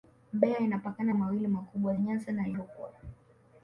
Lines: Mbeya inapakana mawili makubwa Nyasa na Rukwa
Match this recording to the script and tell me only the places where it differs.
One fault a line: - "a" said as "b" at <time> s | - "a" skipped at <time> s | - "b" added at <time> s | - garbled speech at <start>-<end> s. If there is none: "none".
none